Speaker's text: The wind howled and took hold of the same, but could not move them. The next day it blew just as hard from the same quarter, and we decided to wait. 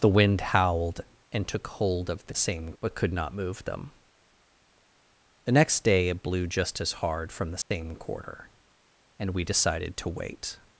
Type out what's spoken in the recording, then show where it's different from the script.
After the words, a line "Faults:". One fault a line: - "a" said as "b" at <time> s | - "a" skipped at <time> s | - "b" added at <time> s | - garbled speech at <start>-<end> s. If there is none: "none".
The wind howled and took hold of the same, but could not move them. The next day it blew just as hard from the same quarter, and we decided to wait.
Faults:
none